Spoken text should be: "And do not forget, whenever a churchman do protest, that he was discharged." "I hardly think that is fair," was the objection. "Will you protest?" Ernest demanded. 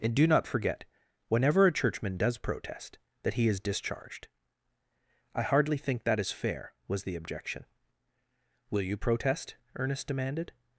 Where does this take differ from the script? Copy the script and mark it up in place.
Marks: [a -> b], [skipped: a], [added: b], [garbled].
"And do not forget, whenever a churchman [do -> does] protest, that he [was -> is] discharged." "I hardly think that is fair," was the objection. "Will you protest?" Ernest demanded.